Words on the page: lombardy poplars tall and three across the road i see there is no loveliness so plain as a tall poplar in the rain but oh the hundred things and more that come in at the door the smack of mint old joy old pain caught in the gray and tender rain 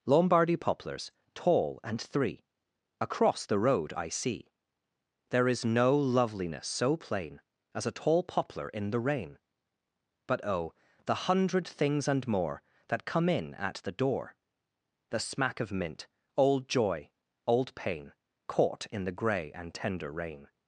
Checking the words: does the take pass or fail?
pass